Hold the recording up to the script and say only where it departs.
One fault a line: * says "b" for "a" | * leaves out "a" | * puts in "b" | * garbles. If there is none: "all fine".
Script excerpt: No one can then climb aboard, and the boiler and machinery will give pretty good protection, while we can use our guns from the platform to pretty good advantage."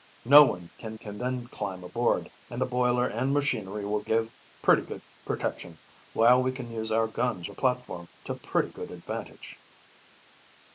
* puts in "can"
* leaves out "from"